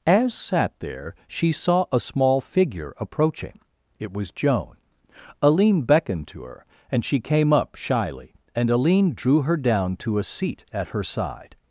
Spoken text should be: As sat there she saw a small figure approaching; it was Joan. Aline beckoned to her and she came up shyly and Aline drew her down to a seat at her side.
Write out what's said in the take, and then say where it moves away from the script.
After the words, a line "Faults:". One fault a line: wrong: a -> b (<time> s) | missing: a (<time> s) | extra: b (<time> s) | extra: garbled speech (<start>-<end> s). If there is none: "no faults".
As sat there she saw a small figure approaching; it was Joan. Aline beckoned to her and she came up shyly and Aline drew her down to a seat at her side.
Faults:
no faults